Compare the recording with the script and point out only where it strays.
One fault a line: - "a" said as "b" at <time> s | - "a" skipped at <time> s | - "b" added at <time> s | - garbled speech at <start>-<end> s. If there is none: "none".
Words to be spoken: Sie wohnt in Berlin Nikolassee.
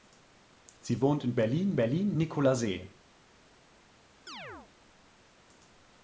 - "Berlin" added at 1.8 s